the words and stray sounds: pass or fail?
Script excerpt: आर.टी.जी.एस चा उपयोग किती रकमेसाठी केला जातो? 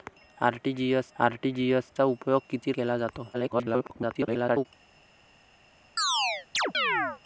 fail